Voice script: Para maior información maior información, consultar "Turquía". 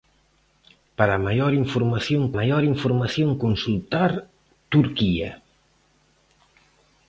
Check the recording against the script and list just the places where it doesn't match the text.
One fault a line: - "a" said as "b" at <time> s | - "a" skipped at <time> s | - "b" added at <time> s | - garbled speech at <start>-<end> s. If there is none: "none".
none